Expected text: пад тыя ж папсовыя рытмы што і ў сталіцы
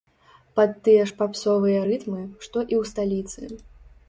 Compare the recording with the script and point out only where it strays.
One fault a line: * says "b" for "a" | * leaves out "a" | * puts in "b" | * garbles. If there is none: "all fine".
all fine